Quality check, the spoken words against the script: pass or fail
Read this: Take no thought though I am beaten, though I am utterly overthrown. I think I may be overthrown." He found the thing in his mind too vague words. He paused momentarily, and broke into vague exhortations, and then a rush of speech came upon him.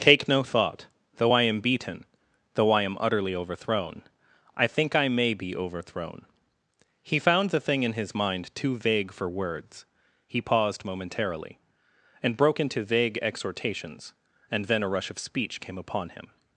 fail